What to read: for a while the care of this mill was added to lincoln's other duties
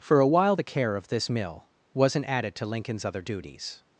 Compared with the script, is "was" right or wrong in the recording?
wrong